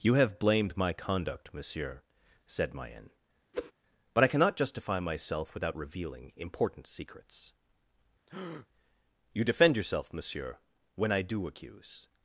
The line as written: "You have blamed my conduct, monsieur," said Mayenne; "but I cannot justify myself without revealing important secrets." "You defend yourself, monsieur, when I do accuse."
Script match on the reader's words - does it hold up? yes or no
yes